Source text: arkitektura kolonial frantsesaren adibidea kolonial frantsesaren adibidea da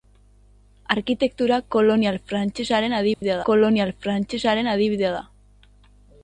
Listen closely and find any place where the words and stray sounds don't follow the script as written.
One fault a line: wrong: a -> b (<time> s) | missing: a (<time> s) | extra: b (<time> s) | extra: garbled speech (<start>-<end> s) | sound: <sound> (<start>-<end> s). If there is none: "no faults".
sound: dropout (3.1-3.2 s)